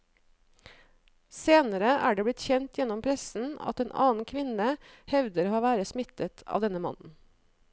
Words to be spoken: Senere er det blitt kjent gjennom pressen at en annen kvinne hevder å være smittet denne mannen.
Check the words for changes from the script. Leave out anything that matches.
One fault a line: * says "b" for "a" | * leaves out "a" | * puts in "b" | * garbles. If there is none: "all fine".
* puts in "av"